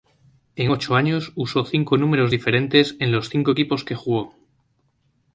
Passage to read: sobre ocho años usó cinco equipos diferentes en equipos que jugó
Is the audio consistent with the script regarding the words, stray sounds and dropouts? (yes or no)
no